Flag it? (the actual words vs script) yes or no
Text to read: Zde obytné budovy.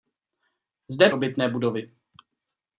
no